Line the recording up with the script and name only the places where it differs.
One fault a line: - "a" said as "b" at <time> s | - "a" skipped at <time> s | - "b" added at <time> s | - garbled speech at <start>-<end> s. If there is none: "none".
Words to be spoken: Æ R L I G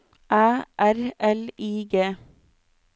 none